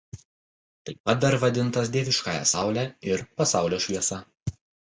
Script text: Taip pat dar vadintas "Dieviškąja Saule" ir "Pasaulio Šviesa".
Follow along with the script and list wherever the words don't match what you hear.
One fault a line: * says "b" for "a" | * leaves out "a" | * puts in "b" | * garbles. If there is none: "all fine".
all fine